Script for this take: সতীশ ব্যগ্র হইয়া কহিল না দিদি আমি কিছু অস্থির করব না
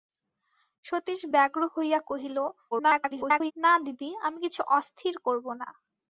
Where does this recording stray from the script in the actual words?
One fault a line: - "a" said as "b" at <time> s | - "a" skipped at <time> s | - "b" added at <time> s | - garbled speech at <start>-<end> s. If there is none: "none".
- garbled speech at 2.7-3.5 s